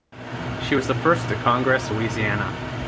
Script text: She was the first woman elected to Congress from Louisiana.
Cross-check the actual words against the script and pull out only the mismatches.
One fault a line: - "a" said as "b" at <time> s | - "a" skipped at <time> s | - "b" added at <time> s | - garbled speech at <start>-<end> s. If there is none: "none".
- "woman elected" skipped at 1.3 s
- "from" skipped at 1.9 s